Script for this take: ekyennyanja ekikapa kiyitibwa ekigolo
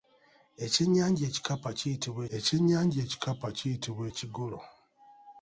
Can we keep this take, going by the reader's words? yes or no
no